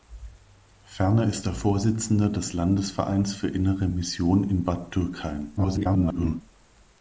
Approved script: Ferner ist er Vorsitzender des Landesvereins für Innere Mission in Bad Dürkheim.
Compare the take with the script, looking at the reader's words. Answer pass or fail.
fail